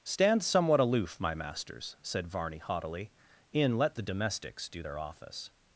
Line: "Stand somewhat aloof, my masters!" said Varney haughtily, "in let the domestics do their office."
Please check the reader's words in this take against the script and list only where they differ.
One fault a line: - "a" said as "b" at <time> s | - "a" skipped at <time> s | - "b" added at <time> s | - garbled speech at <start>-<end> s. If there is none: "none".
none